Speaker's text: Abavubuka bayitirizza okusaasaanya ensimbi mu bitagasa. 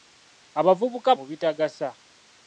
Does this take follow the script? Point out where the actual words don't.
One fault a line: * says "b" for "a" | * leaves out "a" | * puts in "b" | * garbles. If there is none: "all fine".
* leaves out "bayitirizza okusaasaanya ensimbi"